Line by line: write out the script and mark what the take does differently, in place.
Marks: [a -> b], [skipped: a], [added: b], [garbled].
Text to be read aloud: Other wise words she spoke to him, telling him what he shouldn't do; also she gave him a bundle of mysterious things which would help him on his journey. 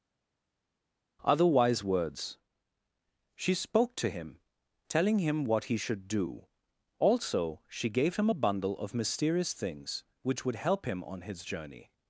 Other wise words she spoke to him, telling him what he [shouldn't -> should] do; also she gave him a bundle of mysterious things which would help him on his journey.